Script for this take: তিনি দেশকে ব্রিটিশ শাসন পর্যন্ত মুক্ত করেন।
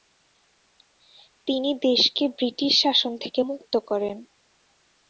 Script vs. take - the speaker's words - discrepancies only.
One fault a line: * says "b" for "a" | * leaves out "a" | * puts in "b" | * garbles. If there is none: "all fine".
* says "থেকে" for "পর্যন্ত"